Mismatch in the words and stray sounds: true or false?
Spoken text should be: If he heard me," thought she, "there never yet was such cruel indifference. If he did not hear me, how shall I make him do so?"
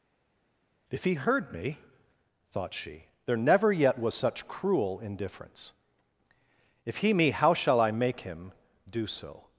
true